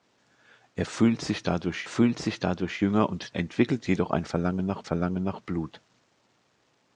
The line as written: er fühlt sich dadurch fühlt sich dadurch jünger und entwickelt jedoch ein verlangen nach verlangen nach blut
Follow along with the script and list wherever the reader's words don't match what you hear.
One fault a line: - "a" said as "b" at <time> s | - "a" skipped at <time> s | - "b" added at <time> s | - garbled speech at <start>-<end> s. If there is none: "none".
none